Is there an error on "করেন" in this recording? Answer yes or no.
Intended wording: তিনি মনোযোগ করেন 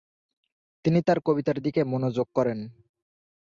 no